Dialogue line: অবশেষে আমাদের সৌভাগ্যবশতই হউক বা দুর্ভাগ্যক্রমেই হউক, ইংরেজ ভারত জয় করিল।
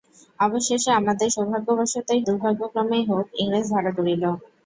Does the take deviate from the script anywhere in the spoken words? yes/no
yes